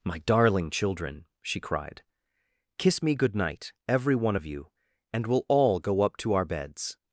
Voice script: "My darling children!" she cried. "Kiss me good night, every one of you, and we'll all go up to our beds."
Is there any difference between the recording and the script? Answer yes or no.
no